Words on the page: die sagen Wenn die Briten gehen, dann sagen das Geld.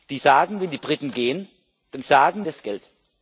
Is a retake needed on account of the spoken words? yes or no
no